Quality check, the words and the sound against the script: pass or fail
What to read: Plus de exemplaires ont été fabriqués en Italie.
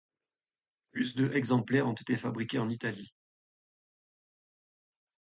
pass